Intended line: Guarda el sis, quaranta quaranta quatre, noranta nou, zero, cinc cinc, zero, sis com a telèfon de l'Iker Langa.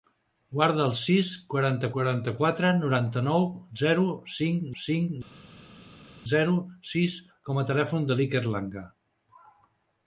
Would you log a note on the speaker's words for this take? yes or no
no